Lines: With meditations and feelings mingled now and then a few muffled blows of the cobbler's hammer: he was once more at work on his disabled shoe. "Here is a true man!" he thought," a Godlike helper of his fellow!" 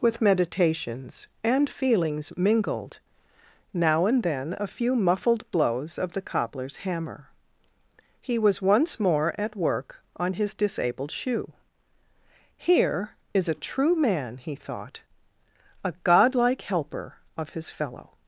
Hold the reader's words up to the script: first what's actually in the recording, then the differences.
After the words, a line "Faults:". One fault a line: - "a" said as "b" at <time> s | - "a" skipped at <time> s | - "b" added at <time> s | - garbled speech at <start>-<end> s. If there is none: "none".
With meditations and feelings mingled now and then a few muffled blows of the cobbler's hammer: he was once more at work on his disabled shoe. "Here is a true man!" he thought," a Godlike helper of his fellow!"
Faults:
none